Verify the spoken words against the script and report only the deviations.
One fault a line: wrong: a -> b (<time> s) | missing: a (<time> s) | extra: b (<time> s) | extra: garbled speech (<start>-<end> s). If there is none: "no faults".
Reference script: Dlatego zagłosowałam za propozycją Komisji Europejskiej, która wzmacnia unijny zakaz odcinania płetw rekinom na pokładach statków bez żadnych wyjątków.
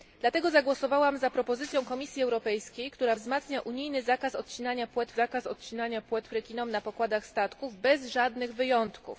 extra: zakaz odcinania płetw (5.1 s)